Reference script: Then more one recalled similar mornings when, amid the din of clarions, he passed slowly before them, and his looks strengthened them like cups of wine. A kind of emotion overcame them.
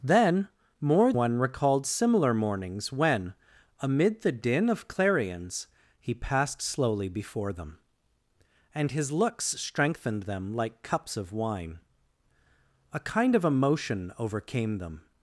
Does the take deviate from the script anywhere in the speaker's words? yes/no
no